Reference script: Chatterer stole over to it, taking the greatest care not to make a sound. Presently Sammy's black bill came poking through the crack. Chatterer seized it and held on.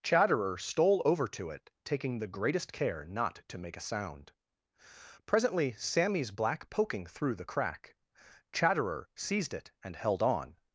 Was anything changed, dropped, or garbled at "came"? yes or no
yes